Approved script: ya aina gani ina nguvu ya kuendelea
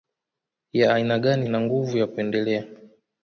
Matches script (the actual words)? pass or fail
pass